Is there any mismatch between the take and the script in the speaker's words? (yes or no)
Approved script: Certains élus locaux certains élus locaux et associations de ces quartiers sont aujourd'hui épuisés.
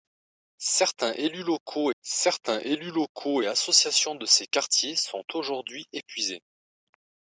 no